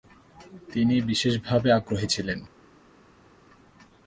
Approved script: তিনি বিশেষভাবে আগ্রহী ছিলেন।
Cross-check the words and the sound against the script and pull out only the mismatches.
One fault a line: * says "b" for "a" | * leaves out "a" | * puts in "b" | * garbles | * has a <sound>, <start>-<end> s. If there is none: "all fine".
all fine